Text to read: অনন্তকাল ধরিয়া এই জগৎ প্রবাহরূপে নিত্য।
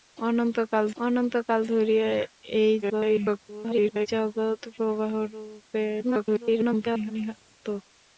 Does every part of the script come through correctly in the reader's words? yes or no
no